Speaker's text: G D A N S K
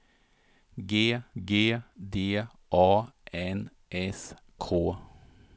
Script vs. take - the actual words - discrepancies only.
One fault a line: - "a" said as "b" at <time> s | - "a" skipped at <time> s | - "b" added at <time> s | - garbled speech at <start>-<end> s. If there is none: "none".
- "g" added at 1.4 s